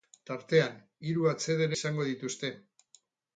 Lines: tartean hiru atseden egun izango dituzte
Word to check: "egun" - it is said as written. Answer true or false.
false